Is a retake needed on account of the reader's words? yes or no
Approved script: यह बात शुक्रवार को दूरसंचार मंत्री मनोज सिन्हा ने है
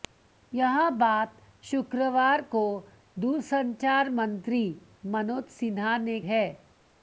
no